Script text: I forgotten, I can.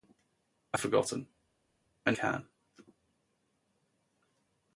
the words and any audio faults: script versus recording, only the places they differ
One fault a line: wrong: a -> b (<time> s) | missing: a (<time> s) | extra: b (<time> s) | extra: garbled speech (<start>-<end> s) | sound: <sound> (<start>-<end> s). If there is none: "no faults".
no faults